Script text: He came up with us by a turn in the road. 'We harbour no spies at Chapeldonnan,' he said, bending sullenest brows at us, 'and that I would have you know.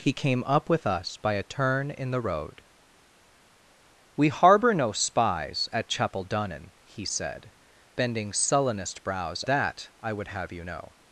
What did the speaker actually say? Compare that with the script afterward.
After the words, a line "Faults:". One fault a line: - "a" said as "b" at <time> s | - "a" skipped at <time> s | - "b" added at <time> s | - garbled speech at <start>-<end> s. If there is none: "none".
He came up with us by a turn in the road. 'We harbour no spies at Chapeldonnan,' he said, bending sullenest brows that I would have you know.
Faults:
- "at us and" skipped at 9.4 s